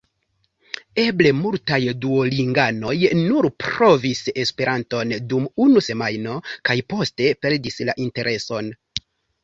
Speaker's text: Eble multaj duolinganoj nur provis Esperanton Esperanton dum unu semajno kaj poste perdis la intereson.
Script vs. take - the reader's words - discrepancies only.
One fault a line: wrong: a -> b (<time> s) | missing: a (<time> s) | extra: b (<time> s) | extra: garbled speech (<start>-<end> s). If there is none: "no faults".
missing: Esperanton (5.2 s)